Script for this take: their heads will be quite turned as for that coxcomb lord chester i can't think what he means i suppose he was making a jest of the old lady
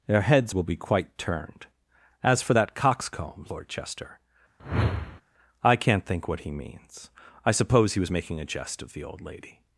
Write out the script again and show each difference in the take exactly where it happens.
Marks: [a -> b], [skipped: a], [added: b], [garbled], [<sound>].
their heads will be quite turned as for that coxcomb lord chester [whoosh] i can't think what he means i suppose he was making a jest of the old lady